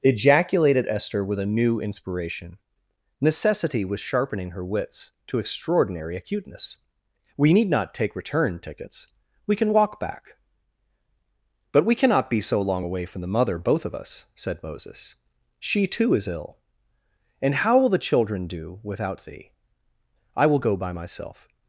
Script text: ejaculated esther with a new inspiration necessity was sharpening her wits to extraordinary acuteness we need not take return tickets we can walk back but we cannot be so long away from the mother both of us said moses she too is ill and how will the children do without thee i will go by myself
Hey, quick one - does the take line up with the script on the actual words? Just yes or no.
yes